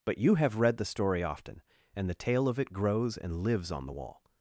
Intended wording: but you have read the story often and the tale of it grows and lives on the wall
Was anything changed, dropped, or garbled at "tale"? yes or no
no